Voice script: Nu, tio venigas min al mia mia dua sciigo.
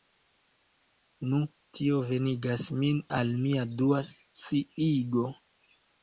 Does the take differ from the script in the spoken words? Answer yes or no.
yes